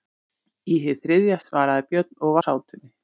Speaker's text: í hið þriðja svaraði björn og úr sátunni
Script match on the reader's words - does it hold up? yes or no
yes